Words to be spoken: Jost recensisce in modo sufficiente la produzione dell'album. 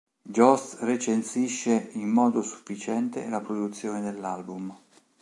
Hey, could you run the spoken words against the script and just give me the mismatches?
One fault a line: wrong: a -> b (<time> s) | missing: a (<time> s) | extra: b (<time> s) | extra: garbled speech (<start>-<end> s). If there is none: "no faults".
no faults